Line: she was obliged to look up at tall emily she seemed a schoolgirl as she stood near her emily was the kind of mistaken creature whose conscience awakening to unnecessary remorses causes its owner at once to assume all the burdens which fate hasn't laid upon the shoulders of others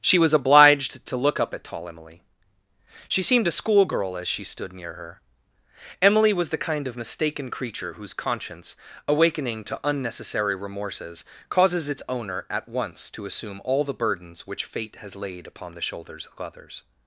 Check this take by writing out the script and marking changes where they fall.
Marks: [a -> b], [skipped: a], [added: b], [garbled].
she was obliged to look up at tall emily she seemed a schoolgirl as she stood near her emily was the kind of mistaken creature whose conscience awakening to unnecessary remorses causes its owner at once to assume all the burdens which fate [hasn't -> has] laid upon the shoulders of others